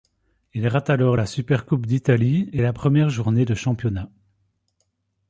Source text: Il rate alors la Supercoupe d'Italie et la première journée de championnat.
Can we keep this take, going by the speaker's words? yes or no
yes